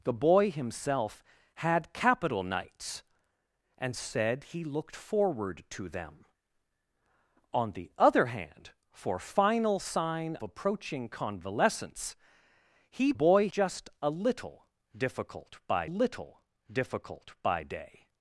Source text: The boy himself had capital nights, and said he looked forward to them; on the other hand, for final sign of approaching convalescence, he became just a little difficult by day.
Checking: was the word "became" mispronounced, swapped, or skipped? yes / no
yes